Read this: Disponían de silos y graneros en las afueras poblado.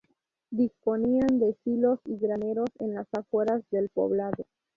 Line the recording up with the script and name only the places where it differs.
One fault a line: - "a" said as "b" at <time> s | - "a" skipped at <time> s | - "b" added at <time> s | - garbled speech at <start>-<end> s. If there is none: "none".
- "del" added at 3.7 s